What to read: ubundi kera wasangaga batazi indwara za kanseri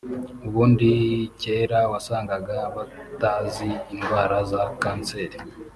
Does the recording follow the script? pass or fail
pass